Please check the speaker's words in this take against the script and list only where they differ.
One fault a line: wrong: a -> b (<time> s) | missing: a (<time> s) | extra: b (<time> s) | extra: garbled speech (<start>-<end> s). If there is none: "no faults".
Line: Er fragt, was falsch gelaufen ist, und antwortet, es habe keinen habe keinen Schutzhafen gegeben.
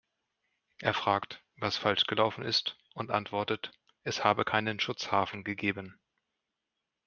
missing: habe keinen (4.8 s)